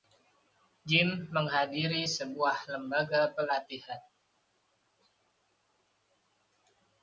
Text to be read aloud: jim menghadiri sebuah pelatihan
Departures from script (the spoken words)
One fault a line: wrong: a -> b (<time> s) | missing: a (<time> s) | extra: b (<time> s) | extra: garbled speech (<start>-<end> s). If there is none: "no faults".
extra: lembaga (2.7 s)